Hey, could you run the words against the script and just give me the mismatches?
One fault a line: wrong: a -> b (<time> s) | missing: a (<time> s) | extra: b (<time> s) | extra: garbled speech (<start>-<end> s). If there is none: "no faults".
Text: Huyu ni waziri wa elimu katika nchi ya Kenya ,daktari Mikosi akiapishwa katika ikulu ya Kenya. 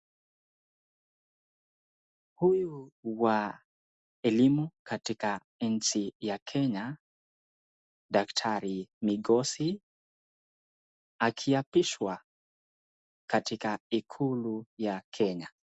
missing: ni waziri (2.9 s)